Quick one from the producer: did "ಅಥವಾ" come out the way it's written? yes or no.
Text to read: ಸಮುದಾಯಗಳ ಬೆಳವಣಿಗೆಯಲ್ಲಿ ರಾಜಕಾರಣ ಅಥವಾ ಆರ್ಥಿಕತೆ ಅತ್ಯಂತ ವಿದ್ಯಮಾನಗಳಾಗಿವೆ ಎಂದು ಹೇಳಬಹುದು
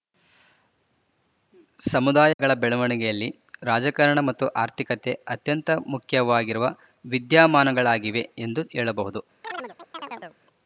no